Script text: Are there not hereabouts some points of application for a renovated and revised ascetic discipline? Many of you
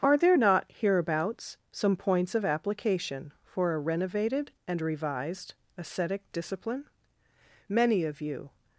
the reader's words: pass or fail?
pass